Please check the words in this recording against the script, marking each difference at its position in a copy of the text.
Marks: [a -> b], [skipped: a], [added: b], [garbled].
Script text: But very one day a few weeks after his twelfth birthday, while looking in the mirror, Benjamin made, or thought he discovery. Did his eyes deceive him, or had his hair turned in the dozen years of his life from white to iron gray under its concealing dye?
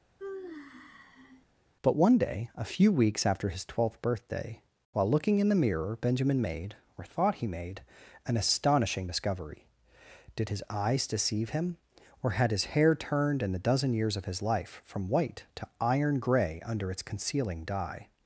But [skipped: very] one day a few weeks after his twelfth birthday, while looking in the mirror, Benjamin made, or thought he [added: made an astonishing] discovery. Did his eyes deceive him, or had his hair turned in the dozen years of his life from white to iron gray under its concealing dye?